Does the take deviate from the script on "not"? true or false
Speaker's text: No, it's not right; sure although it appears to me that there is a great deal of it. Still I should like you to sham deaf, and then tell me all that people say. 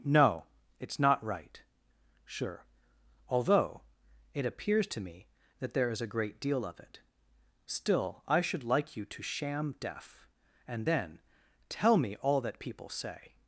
false